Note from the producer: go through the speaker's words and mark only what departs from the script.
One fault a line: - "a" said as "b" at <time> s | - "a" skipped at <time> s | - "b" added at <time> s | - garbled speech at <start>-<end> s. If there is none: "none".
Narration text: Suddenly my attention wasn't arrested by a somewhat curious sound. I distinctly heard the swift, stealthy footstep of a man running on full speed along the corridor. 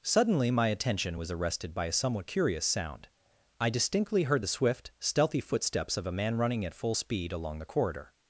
- "wasn't" said as "was" at 1.2 s
- "footstep" said as "footsteps" at 5.4 s
- "on" said as "at" at 6.6 s